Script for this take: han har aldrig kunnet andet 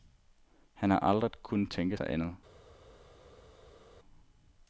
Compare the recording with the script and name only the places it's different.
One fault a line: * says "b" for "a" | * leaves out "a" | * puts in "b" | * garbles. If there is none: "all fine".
* puts in "tænke sig"